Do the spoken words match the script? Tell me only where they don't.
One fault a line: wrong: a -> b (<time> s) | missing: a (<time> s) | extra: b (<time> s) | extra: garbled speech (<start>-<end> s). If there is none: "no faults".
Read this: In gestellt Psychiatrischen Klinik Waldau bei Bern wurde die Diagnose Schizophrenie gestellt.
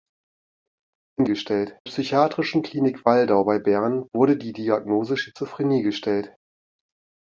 no faults